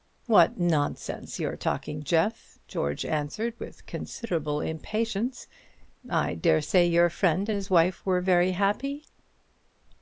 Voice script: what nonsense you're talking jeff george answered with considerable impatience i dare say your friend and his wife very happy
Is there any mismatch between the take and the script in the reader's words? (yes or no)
yes